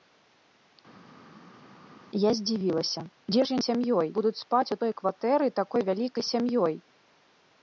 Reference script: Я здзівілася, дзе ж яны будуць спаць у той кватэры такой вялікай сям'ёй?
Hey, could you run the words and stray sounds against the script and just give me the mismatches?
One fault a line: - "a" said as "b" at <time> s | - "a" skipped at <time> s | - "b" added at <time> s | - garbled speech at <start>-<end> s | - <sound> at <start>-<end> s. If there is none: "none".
- "яны" said as "сям'ёй" at 3.7 s